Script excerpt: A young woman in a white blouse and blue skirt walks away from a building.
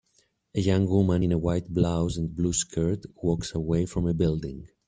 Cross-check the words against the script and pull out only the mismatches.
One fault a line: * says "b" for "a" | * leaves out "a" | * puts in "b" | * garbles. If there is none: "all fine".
all fine